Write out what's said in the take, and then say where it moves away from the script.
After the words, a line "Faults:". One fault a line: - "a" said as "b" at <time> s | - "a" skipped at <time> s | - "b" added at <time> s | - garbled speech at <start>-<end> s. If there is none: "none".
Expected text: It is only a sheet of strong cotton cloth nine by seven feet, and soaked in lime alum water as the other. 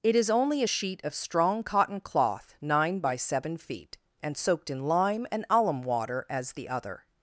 It is only a sheet of strong cotton cloth nine by seven feet, and soaked in lime and alum water as the other.
Faults:
- "and" added at 5.3 s